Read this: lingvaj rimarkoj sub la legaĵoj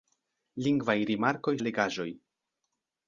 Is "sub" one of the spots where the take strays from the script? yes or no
yes